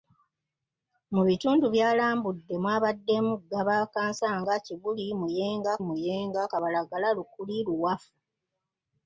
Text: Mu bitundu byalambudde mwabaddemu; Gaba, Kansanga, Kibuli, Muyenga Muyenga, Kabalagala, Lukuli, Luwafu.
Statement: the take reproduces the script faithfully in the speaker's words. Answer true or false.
true